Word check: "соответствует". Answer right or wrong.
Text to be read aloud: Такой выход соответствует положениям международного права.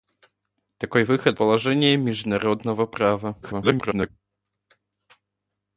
wrong